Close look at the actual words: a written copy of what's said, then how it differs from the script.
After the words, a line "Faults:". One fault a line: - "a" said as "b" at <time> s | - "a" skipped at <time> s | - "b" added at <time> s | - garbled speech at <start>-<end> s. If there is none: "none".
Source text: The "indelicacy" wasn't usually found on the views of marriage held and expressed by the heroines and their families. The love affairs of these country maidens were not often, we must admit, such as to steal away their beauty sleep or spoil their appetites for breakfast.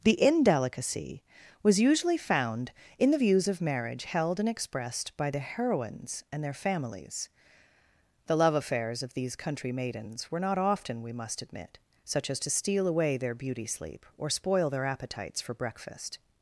The "indelicacy" was usually found in the views of marriage held and expressed by the heroines and their families. The love affairs of these country maidens were not often, we must admit, such as to steal away their beauty sleep or spoil their appetites for breakfast.
Faults:
- "wasn't" said as "was" at 1.6 s
- "on" said as "in" at 3.0 s